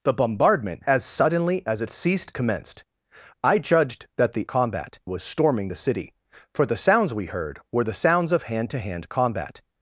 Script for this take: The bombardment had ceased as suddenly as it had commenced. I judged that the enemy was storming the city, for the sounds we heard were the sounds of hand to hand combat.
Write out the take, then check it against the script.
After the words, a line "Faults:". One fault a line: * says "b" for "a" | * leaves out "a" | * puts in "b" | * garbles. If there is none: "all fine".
The bombardment as suddenly as it ceased commenced. I judged that the combat was storming the city, for the sounds we heard were the sounds of hand to hand combat.
Faults:
* leaves out "had ceased"
* says "ceased" for "had"
* says "combat" for "enemy"